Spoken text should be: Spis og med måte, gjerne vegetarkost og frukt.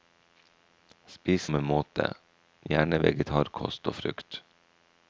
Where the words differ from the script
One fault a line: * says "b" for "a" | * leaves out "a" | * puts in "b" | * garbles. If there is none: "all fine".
all fine